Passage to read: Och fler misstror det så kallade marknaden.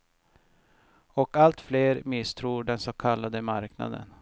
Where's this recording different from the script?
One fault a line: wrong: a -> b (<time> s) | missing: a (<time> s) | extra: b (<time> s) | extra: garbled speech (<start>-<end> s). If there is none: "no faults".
extra: allt (1.3 s)
wrong: det -> den (2.6 s)